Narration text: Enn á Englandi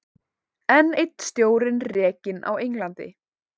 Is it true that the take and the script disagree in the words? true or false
true